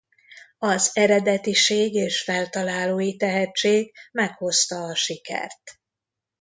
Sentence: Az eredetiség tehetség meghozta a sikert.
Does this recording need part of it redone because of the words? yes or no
yes